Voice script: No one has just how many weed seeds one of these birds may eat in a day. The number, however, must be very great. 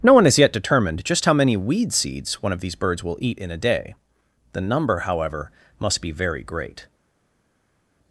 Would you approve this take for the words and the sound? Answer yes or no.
no